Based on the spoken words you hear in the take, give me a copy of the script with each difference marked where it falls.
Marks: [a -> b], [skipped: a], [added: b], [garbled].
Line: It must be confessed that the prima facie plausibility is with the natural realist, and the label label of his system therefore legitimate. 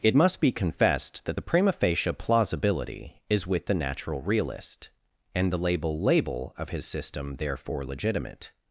It must be confessed that the prima facie plausibility is with the natural realist, and the label label of his system therefore legitimate.